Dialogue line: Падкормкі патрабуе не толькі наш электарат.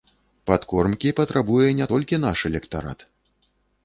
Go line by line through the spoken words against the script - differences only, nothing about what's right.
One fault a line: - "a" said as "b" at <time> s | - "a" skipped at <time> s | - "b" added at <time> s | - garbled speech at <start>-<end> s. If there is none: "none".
none